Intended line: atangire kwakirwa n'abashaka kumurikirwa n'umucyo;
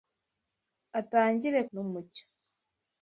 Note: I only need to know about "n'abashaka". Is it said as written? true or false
false